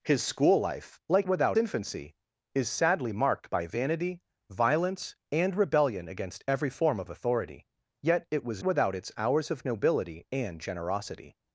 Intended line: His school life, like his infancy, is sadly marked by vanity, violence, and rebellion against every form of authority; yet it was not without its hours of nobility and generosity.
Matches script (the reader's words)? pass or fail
fail